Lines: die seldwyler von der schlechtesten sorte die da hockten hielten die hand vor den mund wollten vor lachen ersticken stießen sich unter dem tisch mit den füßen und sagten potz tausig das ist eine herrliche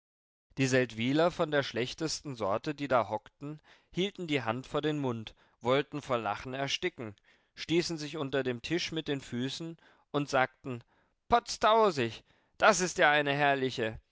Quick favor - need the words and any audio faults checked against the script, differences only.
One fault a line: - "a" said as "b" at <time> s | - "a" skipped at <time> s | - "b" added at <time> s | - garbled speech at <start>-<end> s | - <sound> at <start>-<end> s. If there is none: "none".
- "ja" added at 13.0 s